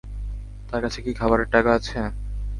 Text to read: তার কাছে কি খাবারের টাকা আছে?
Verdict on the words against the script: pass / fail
pass